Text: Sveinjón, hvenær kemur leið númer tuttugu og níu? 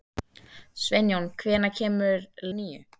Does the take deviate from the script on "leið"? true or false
true